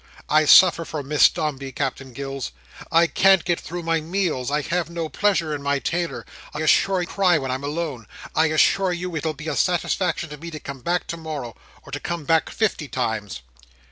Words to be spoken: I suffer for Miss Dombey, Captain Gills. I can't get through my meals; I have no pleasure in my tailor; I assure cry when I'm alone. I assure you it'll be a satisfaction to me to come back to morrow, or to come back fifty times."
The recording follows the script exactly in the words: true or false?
true